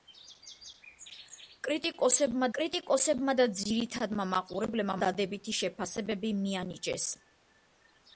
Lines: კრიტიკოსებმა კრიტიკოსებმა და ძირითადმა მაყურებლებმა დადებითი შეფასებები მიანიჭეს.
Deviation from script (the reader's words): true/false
false